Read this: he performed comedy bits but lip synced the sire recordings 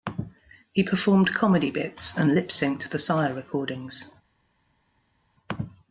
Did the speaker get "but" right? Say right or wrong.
wrong